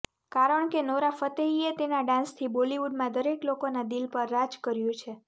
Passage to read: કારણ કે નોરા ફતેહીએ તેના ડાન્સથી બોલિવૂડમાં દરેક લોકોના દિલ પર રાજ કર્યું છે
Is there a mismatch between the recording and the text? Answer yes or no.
no